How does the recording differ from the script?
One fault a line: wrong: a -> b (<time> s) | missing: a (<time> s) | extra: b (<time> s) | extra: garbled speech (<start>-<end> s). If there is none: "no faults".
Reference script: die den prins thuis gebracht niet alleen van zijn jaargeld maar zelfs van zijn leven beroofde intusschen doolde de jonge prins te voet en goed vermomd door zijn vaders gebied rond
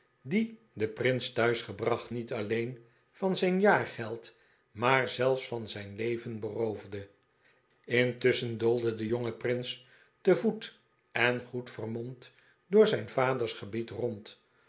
no faults